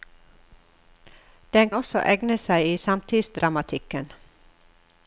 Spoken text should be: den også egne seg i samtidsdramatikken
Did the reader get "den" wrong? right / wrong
right